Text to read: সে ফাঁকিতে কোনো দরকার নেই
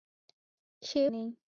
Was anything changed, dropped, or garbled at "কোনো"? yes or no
yes